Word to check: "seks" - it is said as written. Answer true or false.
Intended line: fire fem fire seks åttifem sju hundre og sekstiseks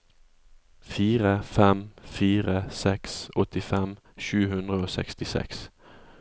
true